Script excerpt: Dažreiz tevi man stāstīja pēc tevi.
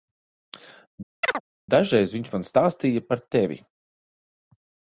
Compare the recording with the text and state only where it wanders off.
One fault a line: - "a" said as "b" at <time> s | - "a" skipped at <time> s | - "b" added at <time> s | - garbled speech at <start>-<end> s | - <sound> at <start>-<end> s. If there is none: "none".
- chirp at 1.2-1.4 s
- "tevi" said as "viņš" at 2.2 s
- "pēc" said as "par" at 3.1 s